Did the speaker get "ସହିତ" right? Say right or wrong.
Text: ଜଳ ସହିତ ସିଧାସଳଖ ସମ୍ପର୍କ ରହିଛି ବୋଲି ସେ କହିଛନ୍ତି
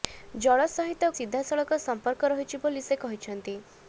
right